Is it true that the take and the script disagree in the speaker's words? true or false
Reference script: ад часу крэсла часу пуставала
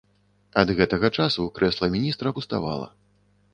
true